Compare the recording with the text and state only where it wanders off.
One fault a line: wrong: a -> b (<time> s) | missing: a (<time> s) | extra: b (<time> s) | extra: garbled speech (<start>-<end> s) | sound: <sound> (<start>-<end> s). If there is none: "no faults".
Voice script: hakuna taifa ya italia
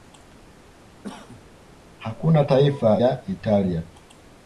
sound: cough (1.0-1.4 s)